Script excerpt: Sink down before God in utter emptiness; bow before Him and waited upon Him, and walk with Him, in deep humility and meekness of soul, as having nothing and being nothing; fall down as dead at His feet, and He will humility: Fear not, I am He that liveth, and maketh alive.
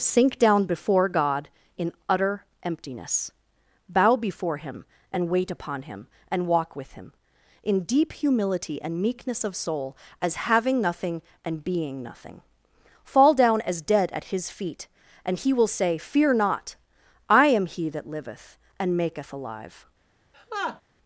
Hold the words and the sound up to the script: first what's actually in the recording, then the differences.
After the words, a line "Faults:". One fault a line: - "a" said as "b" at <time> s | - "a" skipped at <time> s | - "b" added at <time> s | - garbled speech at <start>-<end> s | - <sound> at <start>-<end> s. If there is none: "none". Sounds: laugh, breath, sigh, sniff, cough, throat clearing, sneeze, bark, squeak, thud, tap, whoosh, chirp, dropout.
Sink down before God in utter emptiness; bow before Him and wait upon Him, and walk with Him, in deep humility and meekness of soul, as having nothing and being nothing; fall down as dead at His feet, and He will say: Fear not, I am He that liveth, and maketh alive.
Faults:
- "waited" said as "wait" at 5.3 s
- "humility" said as "say" at 15.7 s
- laugh at 20.3-20.8 s